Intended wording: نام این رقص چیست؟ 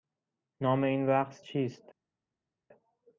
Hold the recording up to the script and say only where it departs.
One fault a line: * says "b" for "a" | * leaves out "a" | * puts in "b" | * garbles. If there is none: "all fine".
all fine